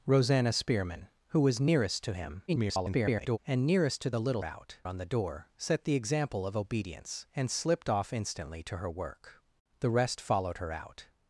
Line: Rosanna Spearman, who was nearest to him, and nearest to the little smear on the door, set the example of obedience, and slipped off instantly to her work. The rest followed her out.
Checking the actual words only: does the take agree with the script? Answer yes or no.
no